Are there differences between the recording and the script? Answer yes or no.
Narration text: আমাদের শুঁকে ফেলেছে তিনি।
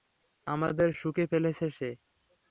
yes